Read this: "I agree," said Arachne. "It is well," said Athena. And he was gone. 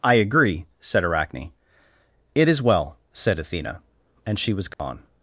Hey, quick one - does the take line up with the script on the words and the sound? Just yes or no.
no